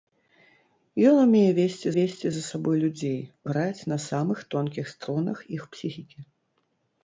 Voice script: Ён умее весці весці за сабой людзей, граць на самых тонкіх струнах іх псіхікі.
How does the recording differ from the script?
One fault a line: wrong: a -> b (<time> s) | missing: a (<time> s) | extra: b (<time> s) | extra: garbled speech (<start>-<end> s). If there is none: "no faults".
no faults